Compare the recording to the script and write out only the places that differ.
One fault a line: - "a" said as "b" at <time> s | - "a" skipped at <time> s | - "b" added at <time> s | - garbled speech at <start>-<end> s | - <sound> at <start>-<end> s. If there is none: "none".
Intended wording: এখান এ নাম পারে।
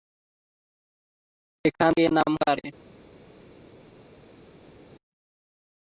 none